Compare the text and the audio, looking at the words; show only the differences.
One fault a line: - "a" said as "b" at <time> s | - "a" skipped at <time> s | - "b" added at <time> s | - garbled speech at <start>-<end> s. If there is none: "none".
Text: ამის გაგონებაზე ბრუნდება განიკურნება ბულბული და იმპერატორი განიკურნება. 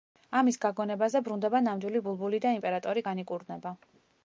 - "განიკურნება" said as "ნამდვილი" at 1.7 s